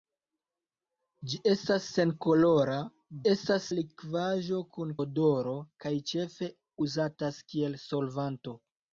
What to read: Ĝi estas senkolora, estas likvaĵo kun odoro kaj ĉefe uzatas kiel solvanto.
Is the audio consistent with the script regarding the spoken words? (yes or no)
yes